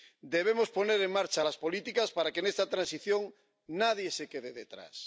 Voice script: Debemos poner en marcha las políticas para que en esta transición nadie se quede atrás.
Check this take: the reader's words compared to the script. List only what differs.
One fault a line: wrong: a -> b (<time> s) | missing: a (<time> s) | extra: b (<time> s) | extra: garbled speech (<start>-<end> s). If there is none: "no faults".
no faults